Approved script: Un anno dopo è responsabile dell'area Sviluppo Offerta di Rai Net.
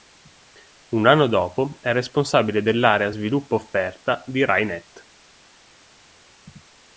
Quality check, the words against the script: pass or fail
pass